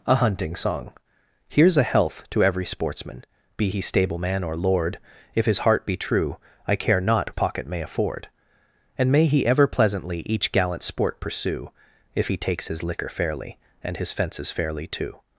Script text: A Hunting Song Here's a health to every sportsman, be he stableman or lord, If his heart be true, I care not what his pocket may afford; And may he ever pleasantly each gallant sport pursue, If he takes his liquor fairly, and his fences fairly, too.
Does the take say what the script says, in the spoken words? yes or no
no